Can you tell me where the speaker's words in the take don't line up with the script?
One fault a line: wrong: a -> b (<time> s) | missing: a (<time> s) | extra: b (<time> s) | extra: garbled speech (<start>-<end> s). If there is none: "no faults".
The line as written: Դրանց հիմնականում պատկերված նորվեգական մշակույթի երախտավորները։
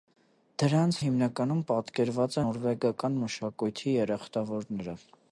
no faults